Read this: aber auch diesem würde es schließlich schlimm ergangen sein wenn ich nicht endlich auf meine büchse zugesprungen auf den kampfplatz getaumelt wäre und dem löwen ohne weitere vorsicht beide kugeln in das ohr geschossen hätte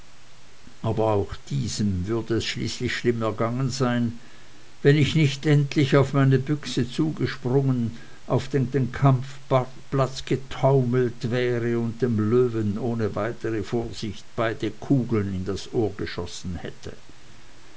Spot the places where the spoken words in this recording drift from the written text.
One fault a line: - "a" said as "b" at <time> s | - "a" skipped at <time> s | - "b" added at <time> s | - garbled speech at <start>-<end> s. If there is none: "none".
- "den" added at 8.7 s